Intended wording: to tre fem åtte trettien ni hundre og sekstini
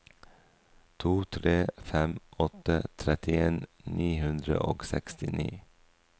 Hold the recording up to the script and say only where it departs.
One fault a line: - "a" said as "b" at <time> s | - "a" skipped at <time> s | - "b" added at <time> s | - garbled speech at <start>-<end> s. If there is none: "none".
none